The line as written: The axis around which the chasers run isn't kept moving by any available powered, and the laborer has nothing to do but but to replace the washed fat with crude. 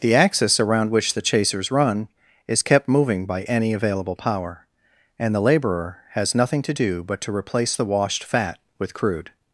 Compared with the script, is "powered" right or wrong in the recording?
wrong